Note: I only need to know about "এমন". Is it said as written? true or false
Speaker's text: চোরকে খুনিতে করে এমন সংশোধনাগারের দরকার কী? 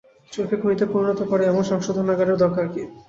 true